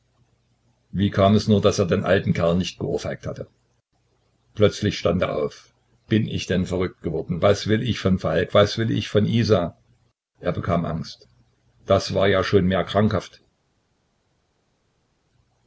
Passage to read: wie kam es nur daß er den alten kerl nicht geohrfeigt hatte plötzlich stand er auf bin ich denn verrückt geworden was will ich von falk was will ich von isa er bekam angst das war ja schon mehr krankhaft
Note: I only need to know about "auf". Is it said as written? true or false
true